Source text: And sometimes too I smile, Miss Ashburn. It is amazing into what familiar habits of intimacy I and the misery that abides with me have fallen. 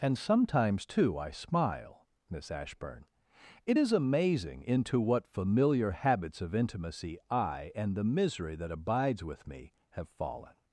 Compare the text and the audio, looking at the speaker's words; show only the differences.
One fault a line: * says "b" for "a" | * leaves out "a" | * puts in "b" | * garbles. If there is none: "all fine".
all fine